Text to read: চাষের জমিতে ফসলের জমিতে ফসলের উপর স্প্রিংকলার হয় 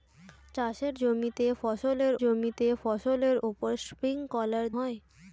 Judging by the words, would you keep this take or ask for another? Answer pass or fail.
pass